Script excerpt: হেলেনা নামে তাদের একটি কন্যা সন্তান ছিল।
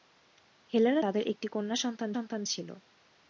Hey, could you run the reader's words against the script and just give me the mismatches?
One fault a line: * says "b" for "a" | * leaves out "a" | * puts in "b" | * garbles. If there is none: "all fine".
* leaves out "নামে"
* puts in "সন্তান"